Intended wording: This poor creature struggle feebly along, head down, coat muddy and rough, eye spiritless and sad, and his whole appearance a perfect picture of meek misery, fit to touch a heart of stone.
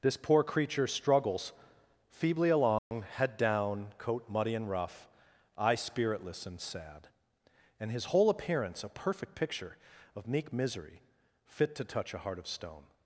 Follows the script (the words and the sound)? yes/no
no